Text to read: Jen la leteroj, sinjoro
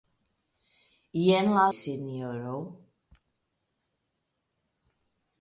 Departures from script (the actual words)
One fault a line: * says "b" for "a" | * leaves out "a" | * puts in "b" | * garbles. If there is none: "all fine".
* leaves out "leteroj"